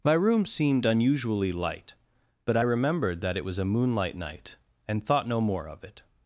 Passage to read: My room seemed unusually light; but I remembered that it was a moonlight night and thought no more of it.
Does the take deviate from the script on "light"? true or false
false